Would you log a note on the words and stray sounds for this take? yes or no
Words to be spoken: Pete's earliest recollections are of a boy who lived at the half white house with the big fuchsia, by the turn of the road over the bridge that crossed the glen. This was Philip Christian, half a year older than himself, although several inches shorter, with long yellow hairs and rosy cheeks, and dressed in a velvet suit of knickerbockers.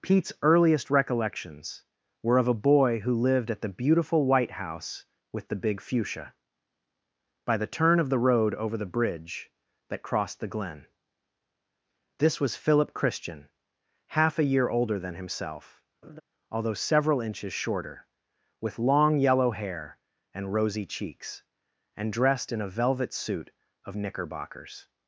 yes